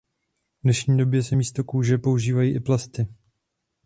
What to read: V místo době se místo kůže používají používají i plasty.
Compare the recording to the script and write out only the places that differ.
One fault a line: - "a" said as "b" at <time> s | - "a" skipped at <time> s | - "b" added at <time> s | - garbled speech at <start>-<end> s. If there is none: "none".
- "místo" said as "dnešní" at 0.6 s
- "používají" skipped at 2.5 s